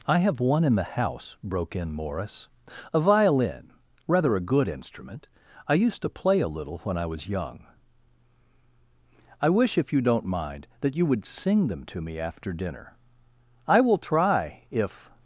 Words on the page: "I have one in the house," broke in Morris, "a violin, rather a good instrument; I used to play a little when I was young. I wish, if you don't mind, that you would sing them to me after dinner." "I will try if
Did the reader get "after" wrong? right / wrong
right